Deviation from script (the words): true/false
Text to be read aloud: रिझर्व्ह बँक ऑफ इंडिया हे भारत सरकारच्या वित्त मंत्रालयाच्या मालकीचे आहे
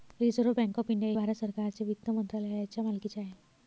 true